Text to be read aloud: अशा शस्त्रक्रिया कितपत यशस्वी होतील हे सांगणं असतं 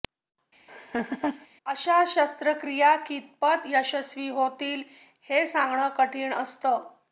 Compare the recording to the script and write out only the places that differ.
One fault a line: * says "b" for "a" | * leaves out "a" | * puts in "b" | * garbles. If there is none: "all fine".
* puts in "कठीण"